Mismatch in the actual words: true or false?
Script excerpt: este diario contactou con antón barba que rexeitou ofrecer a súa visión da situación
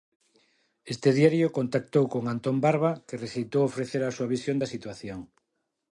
false